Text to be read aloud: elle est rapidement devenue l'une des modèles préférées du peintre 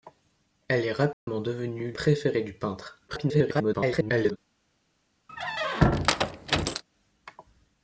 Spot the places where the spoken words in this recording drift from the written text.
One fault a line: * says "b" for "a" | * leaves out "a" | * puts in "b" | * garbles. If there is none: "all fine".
* leaves out "l'une des modèles"
* garbles